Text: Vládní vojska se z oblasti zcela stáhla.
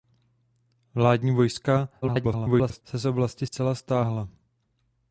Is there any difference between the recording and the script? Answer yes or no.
yes